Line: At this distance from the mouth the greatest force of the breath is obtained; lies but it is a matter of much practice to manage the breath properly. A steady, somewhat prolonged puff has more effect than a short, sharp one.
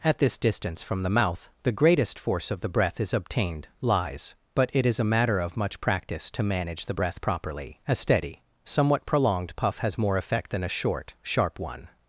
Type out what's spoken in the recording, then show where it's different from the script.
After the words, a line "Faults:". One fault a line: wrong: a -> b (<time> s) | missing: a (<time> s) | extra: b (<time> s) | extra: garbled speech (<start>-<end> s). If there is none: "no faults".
At this distance from the mouth the greatest force of the breath is obtained; lies but it is a matter of much practice to manage the breath properly. A steady, somewhat prolonged puff has more effect than a short, sharp one.
Faults:
no faults